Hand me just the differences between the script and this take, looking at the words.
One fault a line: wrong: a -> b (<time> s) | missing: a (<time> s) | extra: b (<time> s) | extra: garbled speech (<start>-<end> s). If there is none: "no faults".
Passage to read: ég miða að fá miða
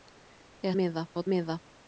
no faults